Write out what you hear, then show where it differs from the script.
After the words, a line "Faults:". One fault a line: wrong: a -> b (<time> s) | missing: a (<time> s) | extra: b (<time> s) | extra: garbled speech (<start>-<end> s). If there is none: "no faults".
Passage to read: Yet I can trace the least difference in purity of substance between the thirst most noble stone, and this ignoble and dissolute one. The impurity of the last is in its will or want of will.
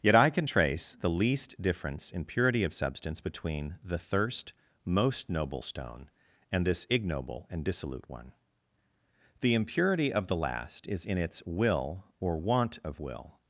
Yet I can trace the least difference in purity of substance between the thirst most noble stone, and this ignoble and dissolute one. The impurity of the last is in its will or want of will.
Faults:
no faults